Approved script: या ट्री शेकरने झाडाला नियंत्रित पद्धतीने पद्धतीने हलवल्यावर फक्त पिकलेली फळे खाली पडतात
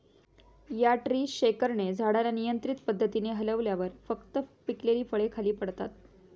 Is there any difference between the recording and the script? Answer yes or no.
yes